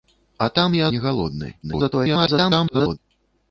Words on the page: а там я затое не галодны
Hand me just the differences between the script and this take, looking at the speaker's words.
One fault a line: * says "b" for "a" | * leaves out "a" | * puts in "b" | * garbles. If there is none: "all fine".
* leaves out "затое"
* garbles